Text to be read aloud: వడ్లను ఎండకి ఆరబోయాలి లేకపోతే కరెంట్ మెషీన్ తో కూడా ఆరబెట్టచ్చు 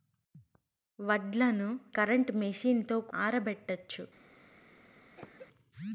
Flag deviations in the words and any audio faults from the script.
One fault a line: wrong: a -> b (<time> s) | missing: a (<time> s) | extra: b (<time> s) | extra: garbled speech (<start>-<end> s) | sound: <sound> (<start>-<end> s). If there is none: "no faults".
missing: ఎండకి ఆరబోయాలి లేకపోతే (1.7 s)
missing: కూడా (3.0 s)
sound: cough (5.2-5.5 s)